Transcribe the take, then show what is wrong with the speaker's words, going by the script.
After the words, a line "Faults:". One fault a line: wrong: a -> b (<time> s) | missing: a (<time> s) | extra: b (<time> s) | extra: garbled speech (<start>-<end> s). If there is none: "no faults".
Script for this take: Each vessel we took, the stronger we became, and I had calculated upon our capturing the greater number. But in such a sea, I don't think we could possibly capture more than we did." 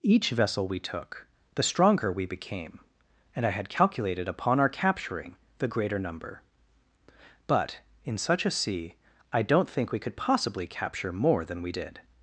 Each vessel we took, the stronger we became, and I had calculated upon our capturing the greater number. But in such a sea, I don't think we could possibly capture more than we did."
Faults:
no faults